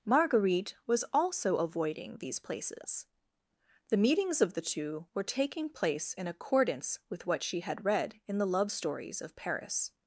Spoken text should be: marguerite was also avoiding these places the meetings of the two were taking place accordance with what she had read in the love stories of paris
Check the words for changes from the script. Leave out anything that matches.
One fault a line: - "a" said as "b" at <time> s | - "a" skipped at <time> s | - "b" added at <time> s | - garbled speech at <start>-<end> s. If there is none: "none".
- "in" added at 6.1 s